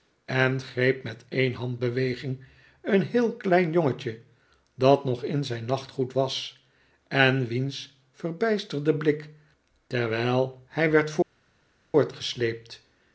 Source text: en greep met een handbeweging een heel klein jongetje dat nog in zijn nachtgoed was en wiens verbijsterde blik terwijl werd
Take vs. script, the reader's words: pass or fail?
fail